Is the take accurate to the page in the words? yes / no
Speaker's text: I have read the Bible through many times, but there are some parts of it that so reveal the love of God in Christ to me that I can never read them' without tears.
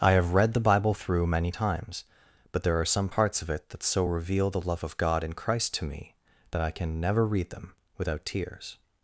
yes